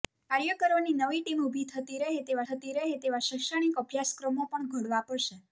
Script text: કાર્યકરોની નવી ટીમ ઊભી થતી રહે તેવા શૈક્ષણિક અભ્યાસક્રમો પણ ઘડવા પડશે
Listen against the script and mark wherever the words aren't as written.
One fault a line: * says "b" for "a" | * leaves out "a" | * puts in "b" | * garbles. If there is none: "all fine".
* puts in "થતી રહે તેવા"